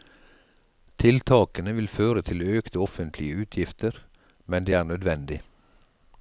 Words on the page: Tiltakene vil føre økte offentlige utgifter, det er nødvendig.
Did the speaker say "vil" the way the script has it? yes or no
yes